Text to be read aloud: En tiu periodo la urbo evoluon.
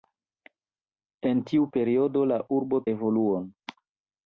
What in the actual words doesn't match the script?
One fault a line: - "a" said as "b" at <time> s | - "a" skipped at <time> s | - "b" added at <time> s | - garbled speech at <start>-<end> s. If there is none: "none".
none